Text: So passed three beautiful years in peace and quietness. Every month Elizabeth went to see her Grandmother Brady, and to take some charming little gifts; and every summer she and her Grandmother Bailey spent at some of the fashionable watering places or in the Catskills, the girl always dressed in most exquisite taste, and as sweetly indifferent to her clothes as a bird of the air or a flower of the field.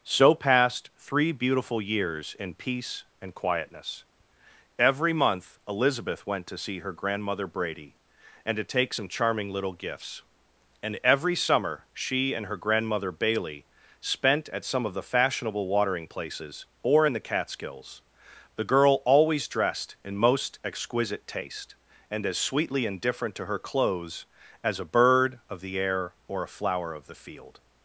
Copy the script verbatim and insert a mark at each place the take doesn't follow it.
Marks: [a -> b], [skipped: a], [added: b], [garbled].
So passed three beautiful years in peace and quietness. Every month Elizabeth went to see her Grandmother Brady, and to take some charming little gifts; and every summer she and her Grandmother Bailey spent at some of the fashionable watering places or in the Catskills, the girl always dressed in most exquisite taste, and as sweetly indifferent to her clothes as a bird of the air or a flower of the field.